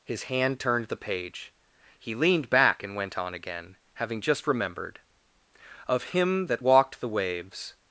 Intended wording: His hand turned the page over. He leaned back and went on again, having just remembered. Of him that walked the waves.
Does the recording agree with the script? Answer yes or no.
no